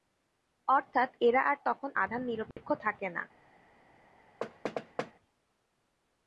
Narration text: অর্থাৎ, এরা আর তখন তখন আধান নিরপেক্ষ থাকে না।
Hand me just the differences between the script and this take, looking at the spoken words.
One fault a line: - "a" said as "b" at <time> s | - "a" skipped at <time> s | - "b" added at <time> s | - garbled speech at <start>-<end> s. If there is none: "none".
- "তখন" skipped at 1.9 s